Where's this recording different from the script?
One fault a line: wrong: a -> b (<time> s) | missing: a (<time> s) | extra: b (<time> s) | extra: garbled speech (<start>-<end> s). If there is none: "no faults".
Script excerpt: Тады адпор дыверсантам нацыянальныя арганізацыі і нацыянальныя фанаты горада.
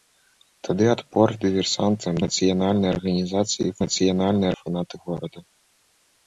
no faults